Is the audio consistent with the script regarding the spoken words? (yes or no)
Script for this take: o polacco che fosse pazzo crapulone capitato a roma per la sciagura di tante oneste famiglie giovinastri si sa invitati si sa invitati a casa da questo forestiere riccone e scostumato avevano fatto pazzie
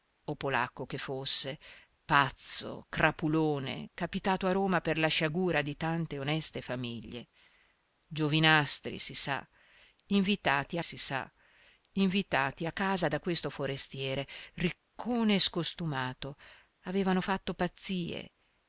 yes